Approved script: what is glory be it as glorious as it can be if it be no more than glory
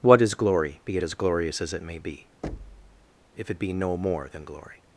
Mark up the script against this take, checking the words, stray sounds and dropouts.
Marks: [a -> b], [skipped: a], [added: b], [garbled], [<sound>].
what is glory be it as glorious as it [can -> may] be [thud] if it be no more than glory